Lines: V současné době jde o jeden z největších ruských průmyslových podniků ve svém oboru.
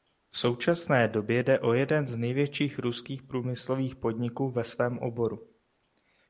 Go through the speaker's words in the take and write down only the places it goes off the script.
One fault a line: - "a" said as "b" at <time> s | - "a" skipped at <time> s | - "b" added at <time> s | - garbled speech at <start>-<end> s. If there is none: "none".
none